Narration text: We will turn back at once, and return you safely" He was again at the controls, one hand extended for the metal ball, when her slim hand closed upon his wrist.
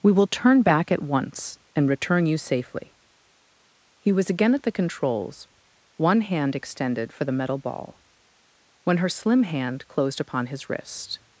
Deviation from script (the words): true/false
false